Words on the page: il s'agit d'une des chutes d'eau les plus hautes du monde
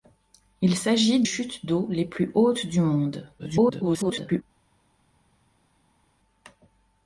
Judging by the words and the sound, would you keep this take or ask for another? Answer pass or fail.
fail